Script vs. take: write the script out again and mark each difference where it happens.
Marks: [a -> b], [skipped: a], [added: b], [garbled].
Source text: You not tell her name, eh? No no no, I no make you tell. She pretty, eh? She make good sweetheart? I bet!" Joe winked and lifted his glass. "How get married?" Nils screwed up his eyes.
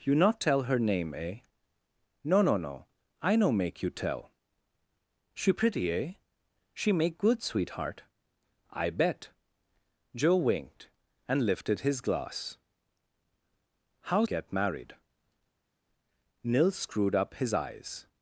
You not tell her name, eh? No no no, I no make you tell. She pretty, eh? She make good sweetheart? I bet!" Joe winked and lifted his glass. "How get married?" Nils screwed up his eyes.